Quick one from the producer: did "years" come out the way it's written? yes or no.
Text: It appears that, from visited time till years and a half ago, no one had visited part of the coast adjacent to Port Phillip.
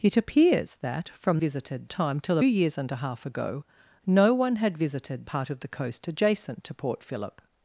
yes